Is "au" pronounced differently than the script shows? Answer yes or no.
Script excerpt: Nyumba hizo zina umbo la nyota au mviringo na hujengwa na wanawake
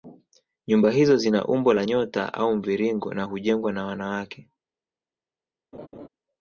no